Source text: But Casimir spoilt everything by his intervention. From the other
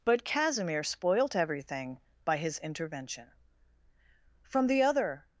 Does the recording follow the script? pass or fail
pass